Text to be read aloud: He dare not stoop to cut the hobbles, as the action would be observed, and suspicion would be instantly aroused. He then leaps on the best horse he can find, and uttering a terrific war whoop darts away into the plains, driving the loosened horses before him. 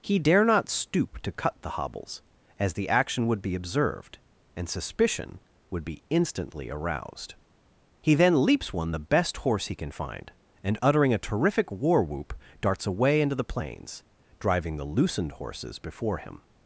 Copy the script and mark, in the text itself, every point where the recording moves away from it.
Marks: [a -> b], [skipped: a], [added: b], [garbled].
He dare not stoop to cut the hobbles, as the action would be observed, and suspicion would be instantly aroused. He then leaps [on -> one] the best horse he can find, and uttering a terrific war whoop darts away into the plains, driving the loosened horses before him.